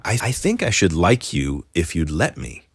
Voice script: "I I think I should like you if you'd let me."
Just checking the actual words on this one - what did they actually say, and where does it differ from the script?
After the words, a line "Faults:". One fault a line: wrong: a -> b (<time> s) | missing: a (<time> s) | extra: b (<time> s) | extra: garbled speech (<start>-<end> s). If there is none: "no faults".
"I I think I should like you if you'd let me."
Faults:
no faults